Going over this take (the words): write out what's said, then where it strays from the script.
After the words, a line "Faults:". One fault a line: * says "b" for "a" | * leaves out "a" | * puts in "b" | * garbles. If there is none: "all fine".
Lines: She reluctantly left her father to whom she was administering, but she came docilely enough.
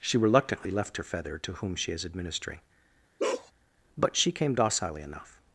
She reluctantly left her feather to whom she is administering, but she came docilely enough.
Faults:
* says "feather" for "father"
* says "is" for "was"